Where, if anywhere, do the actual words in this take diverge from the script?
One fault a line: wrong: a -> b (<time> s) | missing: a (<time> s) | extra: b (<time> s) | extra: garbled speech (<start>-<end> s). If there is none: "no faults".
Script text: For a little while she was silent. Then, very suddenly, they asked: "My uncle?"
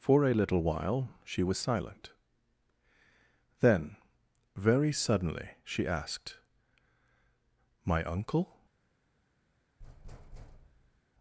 wrong: they -> she (5.6 s)